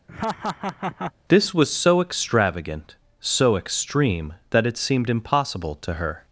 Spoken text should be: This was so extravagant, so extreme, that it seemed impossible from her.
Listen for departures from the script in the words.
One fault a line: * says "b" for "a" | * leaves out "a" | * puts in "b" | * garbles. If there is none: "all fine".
* says "to" for "from"